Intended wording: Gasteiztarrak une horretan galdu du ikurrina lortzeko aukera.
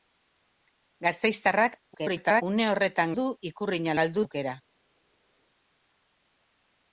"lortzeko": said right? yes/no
no